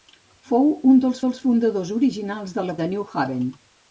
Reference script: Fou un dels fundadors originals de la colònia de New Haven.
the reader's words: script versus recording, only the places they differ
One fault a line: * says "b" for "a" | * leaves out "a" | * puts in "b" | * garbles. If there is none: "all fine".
* puts in "dels"
* leaves out "colònia"